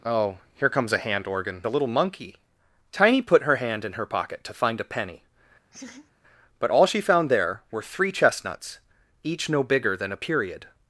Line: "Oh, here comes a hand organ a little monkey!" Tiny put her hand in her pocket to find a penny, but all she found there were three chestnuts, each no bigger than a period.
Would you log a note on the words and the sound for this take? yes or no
yes